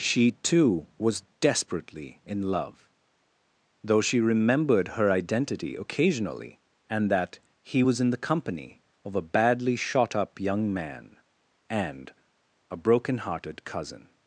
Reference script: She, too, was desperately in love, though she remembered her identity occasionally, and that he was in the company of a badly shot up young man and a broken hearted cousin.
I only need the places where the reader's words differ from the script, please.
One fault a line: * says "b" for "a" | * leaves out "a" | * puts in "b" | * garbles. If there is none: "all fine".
all fine